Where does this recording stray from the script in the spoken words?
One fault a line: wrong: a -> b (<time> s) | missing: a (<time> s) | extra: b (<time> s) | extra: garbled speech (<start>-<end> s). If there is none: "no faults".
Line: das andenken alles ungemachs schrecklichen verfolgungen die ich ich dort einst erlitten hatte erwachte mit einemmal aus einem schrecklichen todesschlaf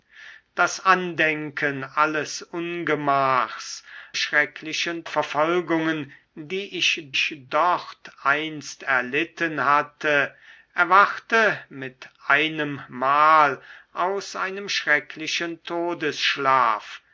no faults